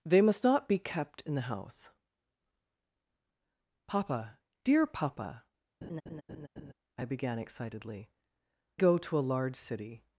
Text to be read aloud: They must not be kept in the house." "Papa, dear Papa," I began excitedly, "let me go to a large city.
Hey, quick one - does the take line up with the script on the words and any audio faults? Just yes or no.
no